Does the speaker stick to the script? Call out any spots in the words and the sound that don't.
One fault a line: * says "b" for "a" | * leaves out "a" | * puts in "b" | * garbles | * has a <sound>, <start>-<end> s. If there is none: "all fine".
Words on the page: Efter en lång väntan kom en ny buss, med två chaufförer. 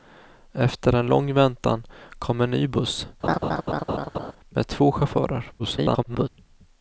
* has a laugh, 3.2-4.3 s
* garbles